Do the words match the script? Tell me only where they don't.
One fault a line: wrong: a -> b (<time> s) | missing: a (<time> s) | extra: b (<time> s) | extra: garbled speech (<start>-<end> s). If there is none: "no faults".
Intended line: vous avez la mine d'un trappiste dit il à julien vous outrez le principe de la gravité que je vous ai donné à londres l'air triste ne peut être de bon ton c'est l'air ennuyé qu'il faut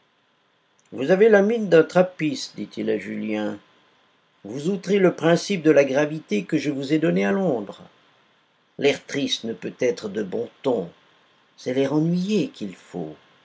no faults